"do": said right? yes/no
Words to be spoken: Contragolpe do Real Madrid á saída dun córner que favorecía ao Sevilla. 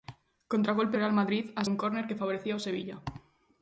no